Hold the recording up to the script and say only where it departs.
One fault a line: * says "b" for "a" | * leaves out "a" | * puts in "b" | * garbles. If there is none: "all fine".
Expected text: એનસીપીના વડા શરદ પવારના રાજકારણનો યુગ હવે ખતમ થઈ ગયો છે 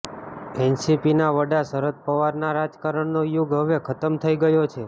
all fine